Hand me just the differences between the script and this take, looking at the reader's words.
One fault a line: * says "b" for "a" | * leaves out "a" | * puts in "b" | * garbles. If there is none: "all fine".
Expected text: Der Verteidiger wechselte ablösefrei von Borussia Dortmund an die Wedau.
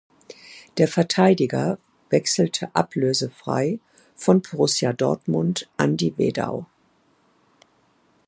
all fine